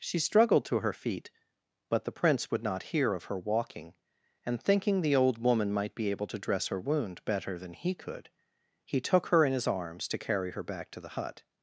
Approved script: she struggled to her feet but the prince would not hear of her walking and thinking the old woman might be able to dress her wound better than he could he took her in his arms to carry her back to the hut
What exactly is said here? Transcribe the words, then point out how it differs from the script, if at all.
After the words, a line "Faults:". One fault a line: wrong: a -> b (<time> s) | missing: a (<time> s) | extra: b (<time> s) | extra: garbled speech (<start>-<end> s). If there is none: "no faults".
she struggled to her feet but the prince would not hear of her walking and thinking the old woman might be able to dress her wound better than he could he took her in his arms to carry her back to the hut
Faults:
no faults